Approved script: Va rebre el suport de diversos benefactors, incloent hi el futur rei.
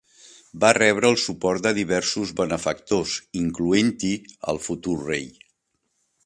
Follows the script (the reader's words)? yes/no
yes